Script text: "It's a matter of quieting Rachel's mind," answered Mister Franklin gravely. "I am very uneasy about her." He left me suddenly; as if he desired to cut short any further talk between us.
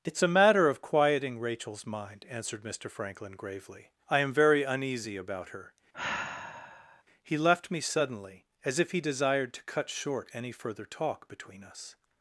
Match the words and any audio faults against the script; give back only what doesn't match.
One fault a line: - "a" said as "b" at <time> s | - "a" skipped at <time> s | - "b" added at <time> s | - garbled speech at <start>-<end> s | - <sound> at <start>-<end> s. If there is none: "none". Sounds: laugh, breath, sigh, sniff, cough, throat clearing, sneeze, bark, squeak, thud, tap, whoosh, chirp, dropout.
- sigh at 5.9-7.0 s